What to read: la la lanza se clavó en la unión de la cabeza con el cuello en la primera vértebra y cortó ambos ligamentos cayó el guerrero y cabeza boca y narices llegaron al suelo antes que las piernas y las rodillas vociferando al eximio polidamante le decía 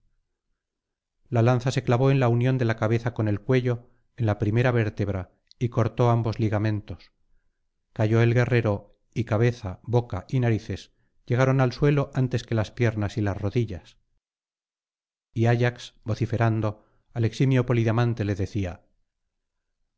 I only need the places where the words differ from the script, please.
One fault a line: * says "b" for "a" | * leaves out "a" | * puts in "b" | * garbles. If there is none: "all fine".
* leaves out "la"
* puts in "y ayax"